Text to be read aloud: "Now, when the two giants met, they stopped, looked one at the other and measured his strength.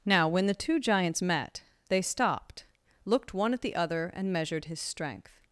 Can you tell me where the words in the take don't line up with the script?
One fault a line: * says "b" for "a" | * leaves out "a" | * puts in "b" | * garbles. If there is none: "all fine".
all fine